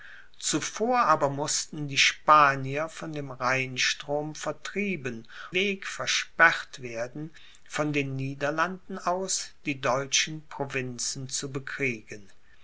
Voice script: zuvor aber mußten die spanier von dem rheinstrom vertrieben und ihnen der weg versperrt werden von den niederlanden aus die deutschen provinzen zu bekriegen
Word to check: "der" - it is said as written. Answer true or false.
false